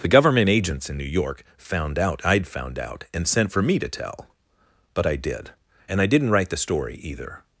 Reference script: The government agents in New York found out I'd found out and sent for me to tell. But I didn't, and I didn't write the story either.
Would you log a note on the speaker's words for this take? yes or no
yes